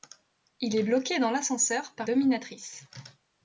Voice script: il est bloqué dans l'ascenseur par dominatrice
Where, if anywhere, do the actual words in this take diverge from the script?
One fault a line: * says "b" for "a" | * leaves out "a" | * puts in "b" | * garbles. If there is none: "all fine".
all fine